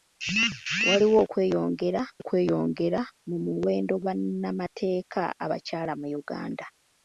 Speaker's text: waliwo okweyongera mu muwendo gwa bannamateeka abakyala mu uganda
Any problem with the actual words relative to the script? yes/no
yes